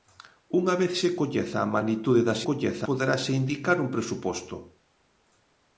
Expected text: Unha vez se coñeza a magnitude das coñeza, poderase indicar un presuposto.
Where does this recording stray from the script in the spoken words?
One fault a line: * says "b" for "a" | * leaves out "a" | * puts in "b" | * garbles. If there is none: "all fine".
all fine